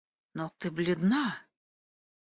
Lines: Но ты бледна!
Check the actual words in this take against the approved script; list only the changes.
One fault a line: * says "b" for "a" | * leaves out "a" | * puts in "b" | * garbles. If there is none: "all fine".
all fine